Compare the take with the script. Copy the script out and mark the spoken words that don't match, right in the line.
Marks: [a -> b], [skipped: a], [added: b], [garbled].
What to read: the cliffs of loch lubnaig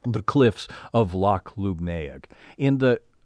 the cliffs of loch lubnaig [added: in the]